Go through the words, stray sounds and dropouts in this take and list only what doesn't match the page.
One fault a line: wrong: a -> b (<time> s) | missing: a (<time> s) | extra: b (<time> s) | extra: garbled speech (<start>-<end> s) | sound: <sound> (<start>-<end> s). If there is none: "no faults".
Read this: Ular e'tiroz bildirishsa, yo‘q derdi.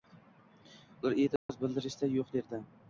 sound: dropout (1.4-1.5 s)